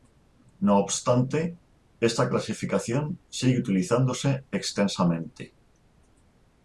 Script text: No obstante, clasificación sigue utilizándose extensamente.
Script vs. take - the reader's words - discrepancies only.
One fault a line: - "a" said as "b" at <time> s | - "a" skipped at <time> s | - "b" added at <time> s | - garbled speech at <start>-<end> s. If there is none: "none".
- "esta" added at 2.0 s